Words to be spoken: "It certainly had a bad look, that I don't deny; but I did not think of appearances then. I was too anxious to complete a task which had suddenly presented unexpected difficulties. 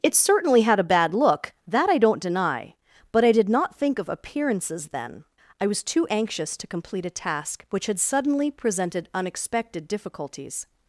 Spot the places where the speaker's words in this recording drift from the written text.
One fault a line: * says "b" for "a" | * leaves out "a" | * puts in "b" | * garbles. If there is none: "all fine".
all fine